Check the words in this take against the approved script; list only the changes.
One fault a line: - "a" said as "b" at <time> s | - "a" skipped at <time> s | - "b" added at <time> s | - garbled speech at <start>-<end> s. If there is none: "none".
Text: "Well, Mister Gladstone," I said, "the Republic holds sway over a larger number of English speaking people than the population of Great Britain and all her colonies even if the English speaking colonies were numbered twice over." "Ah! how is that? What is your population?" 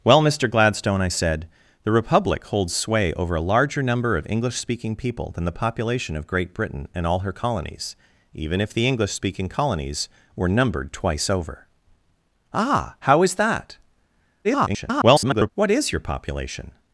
- garbled speech at 14.4-15.5 s